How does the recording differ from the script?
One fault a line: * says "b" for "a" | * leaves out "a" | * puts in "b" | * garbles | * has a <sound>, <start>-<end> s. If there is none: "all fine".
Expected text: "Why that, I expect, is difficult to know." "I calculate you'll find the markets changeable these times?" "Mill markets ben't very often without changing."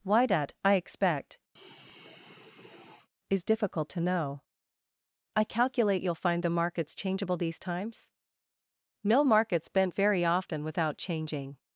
* has a sigh, 1.6-3.1 s